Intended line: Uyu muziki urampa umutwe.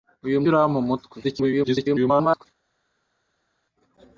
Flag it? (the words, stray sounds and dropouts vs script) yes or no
yes